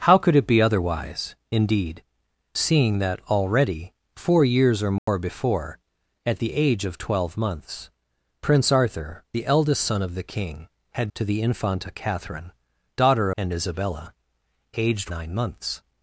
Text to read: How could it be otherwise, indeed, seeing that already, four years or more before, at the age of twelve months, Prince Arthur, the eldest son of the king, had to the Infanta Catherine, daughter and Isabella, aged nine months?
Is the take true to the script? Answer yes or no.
yes